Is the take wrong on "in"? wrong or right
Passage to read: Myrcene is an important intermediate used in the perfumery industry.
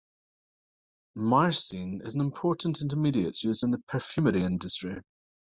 right